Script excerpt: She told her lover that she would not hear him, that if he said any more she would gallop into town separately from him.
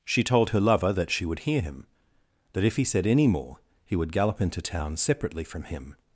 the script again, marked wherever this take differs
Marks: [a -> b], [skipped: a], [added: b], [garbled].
She told her lover that she would [skipped: not] hear him, that if he said any more [she -> he] would gallop into town separately from him.